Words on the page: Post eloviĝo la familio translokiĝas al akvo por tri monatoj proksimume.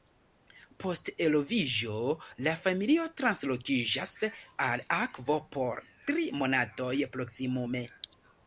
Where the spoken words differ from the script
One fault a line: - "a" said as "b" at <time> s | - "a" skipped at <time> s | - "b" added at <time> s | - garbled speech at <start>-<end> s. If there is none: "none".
none